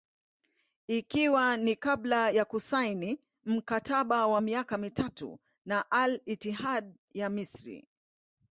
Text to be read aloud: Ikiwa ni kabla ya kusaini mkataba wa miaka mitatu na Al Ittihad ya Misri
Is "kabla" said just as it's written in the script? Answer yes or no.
yes